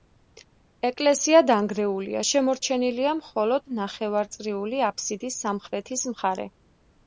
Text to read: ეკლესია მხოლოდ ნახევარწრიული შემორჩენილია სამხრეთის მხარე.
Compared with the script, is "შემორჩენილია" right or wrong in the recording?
wrong